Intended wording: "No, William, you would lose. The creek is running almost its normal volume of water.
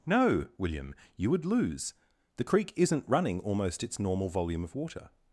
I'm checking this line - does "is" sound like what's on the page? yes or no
no